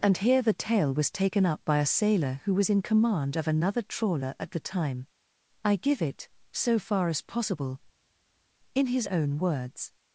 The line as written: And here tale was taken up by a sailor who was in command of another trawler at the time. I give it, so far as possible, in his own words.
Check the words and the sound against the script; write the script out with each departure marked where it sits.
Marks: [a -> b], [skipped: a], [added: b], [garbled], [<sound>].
And here [added: the] tale was taken up by a sailor who was in command of another trawler at the time. I give it, so far as possible, in his own words.